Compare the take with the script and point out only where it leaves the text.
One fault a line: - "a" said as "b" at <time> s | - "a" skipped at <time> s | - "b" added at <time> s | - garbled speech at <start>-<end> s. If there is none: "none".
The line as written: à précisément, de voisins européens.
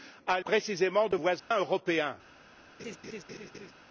none